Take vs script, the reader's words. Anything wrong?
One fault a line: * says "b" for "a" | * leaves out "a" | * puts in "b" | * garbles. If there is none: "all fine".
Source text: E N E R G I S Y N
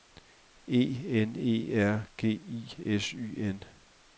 all fine